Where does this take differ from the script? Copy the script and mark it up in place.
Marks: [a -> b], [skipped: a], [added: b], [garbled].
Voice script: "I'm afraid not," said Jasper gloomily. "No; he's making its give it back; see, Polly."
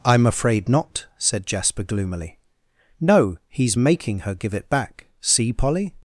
"I'm afraid not," said Jasper gloomily. "No; he's making [its -> her] give it back; see, Polly."